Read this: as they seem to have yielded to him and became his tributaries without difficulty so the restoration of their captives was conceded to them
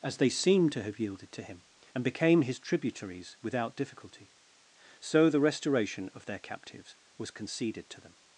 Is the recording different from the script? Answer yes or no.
no